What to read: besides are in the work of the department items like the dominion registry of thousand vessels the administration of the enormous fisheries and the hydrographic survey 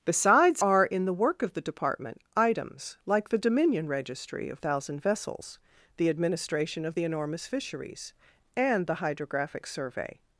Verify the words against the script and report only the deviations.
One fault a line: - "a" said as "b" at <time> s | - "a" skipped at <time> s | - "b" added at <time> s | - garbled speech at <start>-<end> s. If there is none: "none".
none